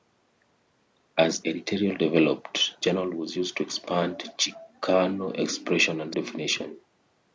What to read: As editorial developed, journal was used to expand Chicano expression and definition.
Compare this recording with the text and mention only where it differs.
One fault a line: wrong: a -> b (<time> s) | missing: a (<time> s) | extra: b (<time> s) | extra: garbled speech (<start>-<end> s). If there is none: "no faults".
no faults